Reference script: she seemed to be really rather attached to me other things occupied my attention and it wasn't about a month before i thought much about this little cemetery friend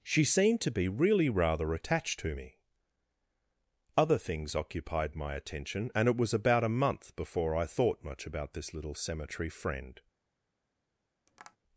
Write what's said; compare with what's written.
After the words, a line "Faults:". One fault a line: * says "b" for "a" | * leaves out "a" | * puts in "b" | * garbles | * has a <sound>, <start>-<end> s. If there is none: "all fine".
she seemed to be really rather attached to me other things occupied my attention and it was about a month before i thought much about this little cemetery friend
Faults:
* says "was" for "wasn't"
* has a tap, 11.3-11.6 s